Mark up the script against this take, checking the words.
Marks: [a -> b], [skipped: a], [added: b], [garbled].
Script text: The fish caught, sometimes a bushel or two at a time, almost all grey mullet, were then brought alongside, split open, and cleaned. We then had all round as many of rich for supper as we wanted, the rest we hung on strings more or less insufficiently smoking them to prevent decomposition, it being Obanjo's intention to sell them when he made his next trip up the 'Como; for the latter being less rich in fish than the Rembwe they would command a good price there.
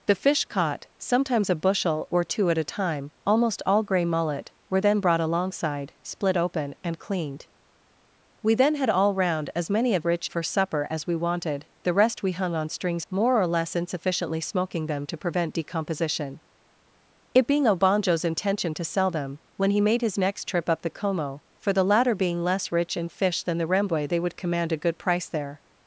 The fish caught, sometimes a bushel or two at a time, almost all grey mullet, were then brought alongside, split open, and cleaned. We then had all round as many of rich for supper as we wanted, the rest we hung on strings more or less insufficiently smoking them to prevent decomposition, it being Obanjo's intention to sell them when he made his next trip up the 'Como; for the latter being less rich in fish than the Rembwe they would command a good price there.